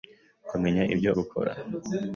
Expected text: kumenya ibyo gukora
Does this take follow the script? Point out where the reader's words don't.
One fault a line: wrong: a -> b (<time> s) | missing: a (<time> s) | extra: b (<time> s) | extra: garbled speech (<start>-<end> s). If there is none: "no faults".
no faults